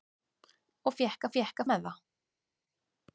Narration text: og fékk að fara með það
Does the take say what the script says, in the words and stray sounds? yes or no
no